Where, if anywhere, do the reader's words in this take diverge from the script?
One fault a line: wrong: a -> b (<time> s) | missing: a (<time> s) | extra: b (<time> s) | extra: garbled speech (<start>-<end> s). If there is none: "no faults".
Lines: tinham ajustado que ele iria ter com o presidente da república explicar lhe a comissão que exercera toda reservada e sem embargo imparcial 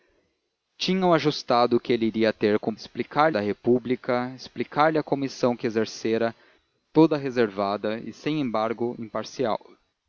wrong: presidente -> explicar (2.7 s)